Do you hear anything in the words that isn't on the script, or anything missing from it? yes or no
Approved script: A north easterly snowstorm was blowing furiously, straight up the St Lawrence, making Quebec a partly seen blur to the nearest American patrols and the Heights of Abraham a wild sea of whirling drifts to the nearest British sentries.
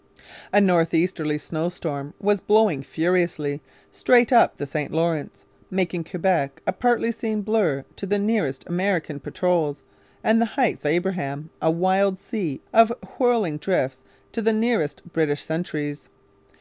yes